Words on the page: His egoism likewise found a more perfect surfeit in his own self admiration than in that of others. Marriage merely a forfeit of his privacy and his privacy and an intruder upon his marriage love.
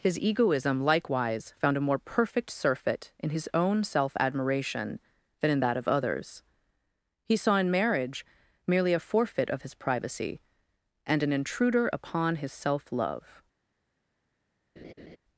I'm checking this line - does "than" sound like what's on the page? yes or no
yes